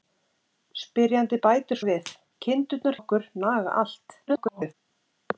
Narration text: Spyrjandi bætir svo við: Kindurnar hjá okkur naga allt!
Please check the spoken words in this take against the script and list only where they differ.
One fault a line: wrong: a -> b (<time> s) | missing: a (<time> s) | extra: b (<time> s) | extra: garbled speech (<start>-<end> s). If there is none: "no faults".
missing: svo (1.8 s)
missing: hjá (3.0 s)
extra: garbled speech (4.3-4.7 s)